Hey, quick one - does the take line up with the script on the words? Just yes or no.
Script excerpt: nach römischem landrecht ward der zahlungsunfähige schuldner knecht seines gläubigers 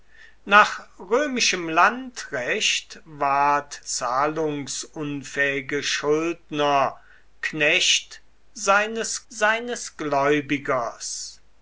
no